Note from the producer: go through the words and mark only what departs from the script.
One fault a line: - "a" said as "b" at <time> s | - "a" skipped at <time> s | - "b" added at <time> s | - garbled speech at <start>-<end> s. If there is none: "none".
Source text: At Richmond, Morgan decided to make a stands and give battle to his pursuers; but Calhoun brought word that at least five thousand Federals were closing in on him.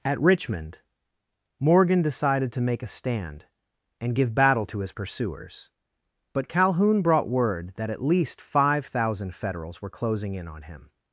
- "stands" said as "stand" at 2.9 s